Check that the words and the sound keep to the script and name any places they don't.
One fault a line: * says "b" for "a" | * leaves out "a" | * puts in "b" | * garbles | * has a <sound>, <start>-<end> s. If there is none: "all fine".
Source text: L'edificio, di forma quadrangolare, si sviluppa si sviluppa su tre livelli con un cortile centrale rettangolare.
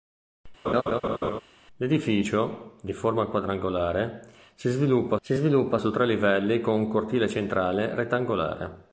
* has a laugh, 0.6-1.4 s